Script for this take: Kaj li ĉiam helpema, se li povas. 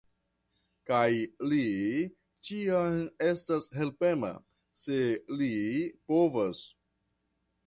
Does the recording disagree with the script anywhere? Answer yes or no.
yes